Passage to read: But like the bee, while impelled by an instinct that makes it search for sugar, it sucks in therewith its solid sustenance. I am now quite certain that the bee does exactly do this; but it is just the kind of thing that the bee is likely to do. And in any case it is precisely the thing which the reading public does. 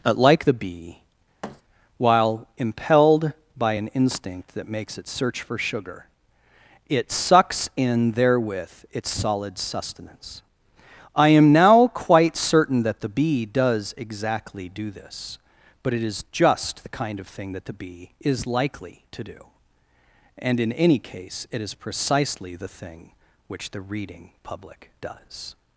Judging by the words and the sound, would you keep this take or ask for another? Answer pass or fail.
fail